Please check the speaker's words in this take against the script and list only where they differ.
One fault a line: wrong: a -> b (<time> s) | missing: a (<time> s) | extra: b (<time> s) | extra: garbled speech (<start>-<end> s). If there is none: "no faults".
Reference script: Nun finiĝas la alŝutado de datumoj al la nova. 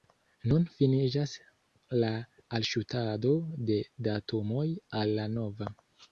no faults